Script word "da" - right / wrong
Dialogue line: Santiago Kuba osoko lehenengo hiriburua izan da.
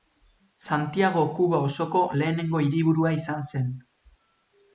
wrong